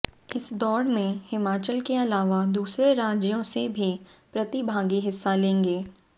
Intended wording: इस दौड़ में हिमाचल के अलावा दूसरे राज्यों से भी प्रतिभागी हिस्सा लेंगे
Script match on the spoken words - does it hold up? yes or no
yes